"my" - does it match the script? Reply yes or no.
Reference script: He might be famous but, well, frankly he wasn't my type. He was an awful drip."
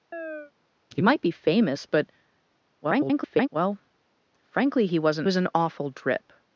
no